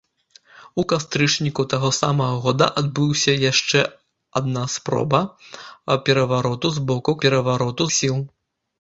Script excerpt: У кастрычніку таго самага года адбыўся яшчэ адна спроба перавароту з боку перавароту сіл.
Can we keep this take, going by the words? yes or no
yes